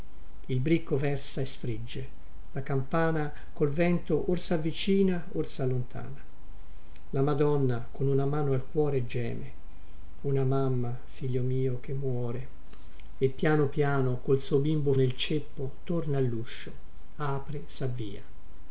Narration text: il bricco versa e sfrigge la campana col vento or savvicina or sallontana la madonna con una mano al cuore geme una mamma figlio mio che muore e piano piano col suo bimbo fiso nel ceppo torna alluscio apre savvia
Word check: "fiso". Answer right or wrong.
wrong